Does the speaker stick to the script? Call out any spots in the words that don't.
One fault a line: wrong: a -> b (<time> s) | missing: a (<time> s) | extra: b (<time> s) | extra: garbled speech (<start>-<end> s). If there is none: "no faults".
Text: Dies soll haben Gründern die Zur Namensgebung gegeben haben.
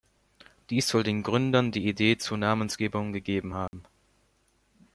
wrong: haben -> den (1.0 s)
extra: Idee (1.9 s)